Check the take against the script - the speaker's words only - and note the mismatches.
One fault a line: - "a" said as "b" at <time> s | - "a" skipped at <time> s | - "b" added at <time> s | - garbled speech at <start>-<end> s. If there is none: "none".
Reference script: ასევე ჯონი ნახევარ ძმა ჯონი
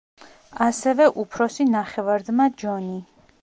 - "ჯონი" said as "უფროსი" at 1.2 s